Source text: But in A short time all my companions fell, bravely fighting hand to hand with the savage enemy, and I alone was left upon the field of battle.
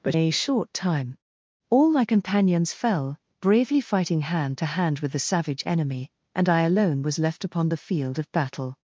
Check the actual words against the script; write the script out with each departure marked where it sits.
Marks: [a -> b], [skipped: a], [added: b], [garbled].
But [skipped: in] A short time all my companions fell, bravely fighting hand to hand with the savage enemy, and I alone was left upon the field of battle.